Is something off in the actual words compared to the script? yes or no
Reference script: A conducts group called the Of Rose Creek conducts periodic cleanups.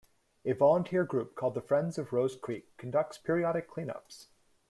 yes